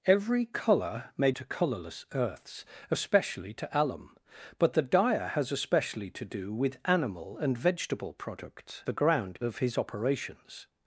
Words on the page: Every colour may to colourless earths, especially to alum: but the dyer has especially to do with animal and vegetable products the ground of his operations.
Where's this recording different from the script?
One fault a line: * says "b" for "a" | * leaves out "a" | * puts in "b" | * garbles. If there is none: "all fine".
all fine